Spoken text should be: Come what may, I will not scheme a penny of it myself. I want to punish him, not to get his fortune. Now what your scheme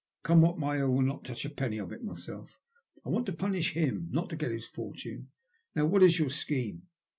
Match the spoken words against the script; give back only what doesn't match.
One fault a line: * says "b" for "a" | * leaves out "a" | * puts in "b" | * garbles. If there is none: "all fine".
* says "touch" for "scheme"
* puts in "is"